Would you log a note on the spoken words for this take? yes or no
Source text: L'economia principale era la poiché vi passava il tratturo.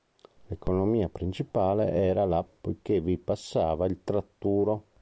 no